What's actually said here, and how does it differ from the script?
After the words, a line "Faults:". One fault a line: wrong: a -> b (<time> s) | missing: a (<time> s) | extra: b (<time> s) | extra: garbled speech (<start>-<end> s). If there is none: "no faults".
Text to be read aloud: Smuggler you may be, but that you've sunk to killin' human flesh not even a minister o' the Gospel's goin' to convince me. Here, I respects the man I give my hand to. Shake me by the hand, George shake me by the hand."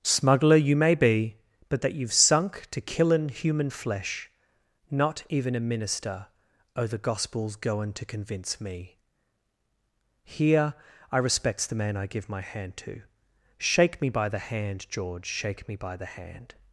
Smuggler you may be, but that you've sunk to killin' human flesh not even a minister o' the Gospel's goin' to convince me. Here, I respects the man I give my hand to. Shake me by the hand, George shake me by the hand."
Faults:
no faults